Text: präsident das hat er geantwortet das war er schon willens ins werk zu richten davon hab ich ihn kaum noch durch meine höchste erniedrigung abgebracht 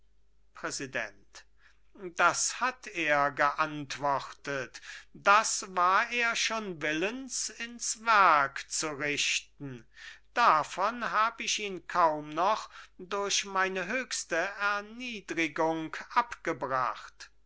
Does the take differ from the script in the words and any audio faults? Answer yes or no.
no